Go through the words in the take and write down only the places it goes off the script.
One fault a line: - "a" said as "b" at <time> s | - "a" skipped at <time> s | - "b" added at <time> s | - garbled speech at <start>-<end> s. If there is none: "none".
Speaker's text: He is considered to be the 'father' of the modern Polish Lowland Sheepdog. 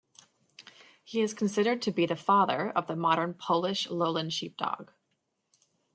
none